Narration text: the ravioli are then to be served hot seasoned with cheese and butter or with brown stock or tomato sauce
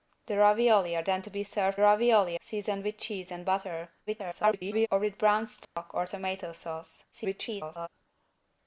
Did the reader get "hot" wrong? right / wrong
wrong